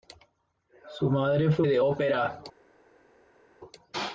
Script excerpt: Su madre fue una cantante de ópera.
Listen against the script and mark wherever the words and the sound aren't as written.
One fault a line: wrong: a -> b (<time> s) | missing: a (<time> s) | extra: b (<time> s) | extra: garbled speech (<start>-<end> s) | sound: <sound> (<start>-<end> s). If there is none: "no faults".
missing: una cantante (1.6 s)